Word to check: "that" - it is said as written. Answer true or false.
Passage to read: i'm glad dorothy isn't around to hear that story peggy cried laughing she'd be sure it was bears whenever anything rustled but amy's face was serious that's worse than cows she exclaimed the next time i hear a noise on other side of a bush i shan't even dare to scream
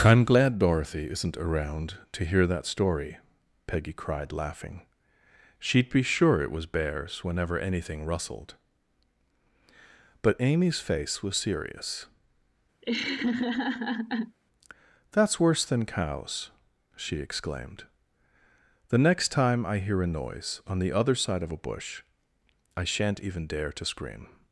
true